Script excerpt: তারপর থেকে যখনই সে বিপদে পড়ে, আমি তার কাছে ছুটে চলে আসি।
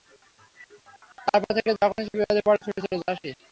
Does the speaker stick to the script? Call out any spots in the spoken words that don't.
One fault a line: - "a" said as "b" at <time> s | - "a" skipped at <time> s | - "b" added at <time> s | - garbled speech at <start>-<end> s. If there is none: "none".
- "আমি তার কাছে" skipped at 2.6 s